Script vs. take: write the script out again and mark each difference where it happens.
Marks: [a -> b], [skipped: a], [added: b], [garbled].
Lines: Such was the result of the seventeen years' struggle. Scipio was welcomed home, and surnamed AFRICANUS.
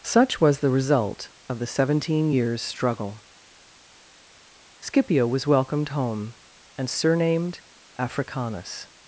Such was the result of the seventeen years' struggle. Scipio was welcomed home, and surnamed AFRICANUS.